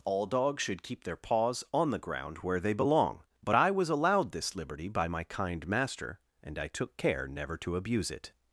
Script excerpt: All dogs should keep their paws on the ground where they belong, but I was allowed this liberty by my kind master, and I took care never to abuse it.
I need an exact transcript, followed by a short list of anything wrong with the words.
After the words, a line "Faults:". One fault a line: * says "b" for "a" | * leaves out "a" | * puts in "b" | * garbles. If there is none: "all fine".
All dogs should keep their paws on the ground where they belong, but I was allowed this liberty by my kind master, and I took care never to abuse it.
Faults:
all fine